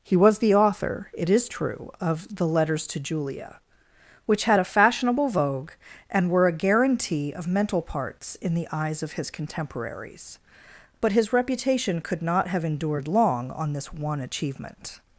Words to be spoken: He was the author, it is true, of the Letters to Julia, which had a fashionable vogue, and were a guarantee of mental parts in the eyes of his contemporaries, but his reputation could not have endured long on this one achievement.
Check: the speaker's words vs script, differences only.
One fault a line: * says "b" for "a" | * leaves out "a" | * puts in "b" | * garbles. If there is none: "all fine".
all fine